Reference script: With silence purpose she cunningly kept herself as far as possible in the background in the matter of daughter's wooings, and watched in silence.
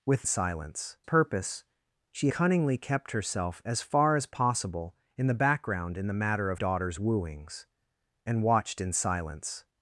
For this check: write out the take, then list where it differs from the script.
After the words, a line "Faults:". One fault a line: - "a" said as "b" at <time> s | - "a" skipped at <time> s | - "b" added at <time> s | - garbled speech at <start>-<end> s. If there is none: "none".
With silence purpose she cunningly kept herself as far as possible in the background in the matter of daughter's wooings, and watched in silence.
Faults:
none